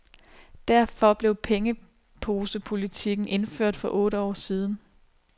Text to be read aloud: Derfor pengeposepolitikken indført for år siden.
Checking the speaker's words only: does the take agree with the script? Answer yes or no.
no